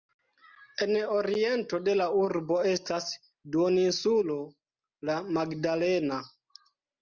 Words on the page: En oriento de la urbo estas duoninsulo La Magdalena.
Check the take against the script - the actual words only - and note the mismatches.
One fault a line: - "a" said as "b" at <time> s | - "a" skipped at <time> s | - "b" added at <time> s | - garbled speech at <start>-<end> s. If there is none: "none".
none